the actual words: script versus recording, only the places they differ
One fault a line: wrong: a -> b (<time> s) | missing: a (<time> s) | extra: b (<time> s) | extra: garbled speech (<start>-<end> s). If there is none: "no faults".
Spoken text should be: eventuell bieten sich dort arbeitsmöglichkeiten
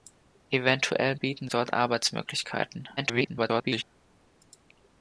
missing: sich (1.5 s)
extra: garbled speech (3.0-3.8 s)